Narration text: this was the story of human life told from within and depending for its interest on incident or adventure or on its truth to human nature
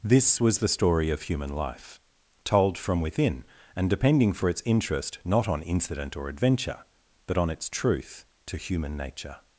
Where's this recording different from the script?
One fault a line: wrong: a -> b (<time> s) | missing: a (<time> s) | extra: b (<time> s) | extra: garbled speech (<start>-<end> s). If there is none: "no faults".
extra: not (5.3 s)
wrong: or -> but (7.3 s)